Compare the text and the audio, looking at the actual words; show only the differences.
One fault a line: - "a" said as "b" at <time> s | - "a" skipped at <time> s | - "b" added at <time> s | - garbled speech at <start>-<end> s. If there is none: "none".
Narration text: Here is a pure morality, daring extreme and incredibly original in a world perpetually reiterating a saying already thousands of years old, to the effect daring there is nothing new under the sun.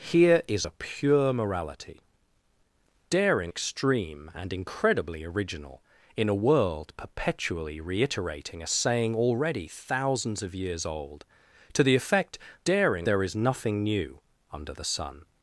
none